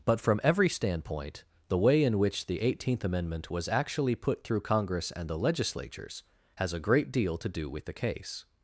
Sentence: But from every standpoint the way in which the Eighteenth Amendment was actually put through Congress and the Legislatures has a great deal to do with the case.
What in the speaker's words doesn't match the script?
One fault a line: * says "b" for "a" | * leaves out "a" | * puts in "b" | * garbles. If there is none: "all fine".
all fine